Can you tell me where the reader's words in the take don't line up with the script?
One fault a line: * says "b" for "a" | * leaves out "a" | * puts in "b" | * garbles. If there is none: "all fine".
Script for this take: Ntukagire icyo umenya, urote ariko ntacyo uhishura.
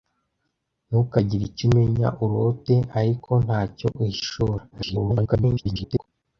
* garbles